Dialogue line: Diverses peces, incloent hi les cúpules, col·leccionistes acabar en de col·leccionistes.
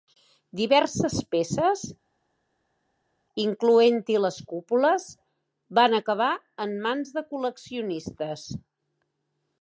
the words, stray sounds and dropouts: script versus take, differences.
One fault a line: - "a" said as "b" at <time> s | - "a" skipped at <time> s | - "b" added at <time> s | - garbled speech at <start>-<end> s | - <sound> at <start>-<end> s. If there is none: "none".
- "col·leccionistes" said as "van" at 5.8 s
- "mans" added at 6.9 s